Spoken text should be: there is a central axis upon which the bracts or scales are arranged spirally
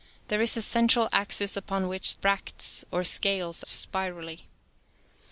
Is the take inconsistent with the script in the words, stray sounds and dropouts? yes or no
yes